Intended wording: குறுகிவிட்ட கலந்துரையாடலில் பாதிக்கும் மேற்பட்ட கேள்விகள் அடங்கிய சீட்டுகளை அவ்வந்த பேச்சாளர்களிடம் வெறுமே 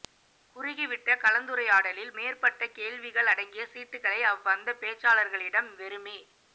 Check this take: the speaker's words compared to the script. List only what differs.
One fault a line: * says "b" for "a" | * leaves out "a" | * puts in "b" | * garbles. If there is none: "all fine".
* leaves out "பாதிக்கும்"